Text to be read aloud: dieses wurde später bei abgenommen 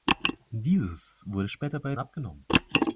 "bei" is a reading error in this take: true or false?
false